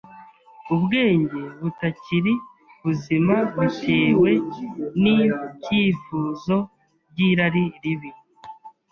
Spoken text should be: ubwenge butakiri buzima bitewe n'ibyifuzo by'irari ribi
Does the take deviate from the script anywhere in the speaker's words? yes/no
no